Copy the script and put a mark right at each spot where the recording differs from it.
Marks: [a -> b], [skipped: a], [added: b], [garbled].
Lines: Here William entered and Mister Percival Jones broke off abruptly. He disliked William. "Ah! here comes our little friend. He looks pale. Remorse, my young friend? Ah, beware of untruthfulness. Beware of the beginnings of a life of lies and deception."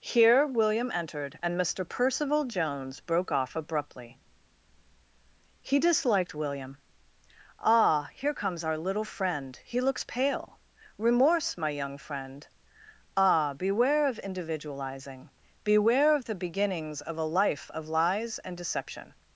Here William entered and Mister Percival Jones broke off abruptly. He disliked William. "Ah! here comes our little friend. He looks pale. Remorse, my young friend? Ah, beware of [untruthfulness. -> individualizing] Beware of the beginnings of a life of lies and deception."